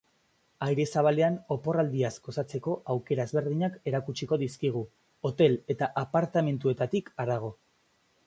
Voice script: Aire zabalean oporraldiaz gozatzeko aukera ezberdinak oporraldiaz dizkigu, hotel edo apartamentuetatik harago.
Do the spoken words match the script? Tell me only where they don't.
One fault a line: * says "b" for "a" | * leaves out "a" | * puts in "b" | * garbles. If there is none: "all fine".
* says "erakutsiko" for "oporraldiaz"
* says "eta" for "edo"